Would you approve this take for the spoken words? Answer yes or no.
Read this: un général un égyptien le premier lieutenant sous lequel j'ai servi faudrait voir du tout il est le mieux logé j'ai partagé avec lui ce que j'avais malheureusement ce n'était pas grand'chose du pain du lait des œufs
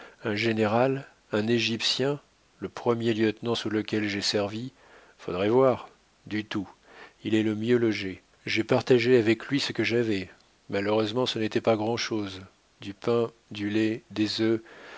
yes